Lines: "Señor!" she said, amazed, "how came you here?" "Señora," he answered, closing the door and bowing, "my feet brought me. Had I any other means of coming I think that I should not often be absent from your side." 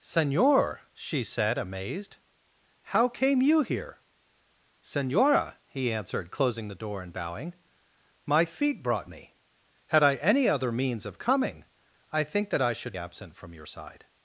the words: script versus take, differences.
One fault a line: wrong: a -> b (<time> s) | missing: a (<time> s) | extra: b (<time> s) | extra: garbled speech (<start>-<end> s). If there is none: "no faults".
missing: not often be (13.0 s)